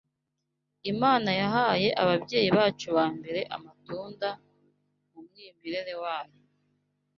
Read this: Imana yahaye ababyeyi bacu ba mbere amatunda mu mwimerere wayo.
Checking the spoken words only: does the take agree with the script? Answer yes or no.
yes